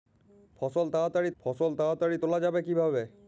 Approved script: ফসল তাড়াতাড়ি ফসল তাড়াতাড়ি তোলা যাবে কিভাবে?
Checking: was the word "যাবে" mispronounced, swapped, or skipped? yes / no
no